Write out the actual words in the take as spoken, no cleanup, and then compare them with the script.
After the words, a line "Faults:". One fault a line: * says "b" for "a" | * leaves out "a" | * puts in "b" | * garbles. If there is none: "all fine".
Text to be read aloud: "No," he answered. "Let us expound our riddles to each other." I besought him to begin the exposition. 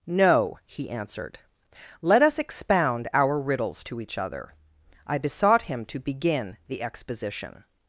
"No," he answered. "Let us expound our riddles to each other." I besought him to begin the exposition.
Faults:
all fine